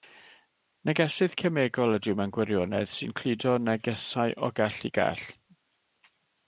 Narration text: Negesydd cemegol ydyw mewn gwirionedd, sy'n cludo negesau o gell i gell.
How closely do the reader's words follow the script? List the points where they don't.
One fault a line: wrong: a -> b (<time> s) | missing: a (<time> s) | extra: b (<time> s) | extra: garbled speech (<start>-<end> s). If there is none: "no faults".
no faults